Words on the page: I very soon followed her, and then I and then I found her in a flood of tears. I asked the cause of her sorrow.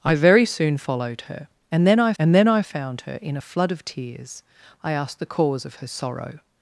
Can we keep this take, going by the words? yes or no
yes